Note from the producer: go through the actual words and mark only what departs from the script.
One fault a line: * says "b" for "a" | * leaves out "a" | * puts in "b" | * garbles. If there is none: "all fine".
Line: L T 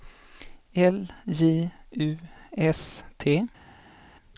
* puts in "J U S"